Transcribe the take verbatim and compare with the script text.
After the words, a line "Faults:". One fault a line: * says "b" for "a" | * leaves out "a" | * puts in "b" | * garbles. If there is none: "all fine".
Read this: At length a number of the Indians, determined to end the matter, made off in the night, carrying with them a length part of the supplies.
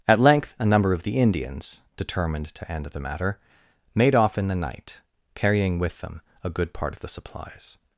At length a number of the Indians, determined to end the matter, made off in the night, carrying with them a good part of the supplies.
Faults:
* says "good" for "length"